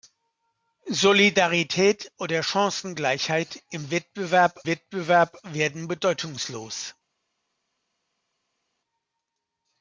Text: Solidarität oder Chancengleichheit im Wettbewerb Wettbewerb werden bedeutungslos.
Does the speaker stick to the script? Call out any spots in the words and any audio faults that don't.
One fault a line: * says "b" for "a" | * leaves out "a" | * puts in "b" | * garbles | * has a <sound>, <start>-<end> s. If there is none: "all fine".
all fine